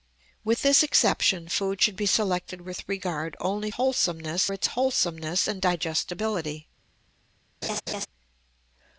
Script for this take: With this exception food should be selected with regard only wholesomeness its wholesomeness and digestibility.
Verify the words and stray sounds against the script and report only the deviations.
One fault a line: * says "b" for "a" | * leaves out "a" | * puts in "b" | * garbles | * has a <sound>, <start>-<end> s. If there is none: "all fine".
* has a laugh, 7.6-8.1 s